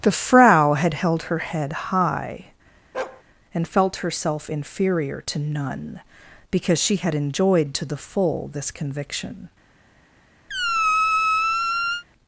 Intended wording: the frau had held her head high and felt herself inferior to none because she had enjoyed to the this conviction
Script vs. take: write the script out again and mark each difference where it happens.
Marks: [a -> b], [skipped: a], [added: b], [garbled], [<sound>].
the frau had held her head high [bark] and felt herself inferior to none because she had enjoyed to the [added: full] this conviction [squeak]